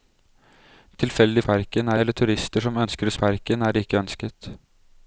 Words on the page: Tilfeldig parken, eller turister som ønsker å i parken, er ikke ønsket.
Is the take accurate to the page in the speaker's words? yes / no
yes